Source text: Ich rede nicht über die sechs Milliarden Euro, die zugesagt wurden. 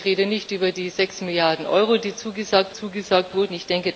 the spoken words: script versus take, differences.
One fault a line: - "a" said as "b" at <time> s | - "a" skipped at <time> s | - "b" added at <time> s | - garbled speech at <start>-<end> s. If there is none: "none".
- "zugesagt" added at 2.7 s